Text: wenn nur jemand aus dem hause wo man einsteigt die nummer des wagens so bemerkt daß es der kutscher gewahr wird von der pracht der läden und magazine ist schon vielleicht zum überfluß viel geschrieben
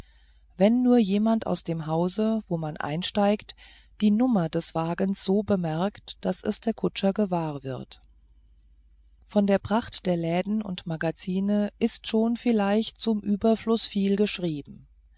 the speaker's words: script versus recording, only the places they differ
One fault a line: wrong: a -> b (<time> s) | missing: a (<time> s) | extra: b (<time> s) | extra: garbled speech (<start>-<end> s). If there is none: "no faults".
no faults